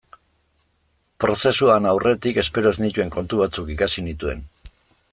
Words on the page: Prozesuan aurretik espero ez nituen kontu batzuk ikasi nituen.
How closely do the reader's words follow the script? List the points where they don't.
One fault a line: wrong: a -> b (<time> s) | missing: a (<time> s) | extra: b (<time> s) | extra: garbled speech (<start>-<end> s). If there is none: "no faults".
no faults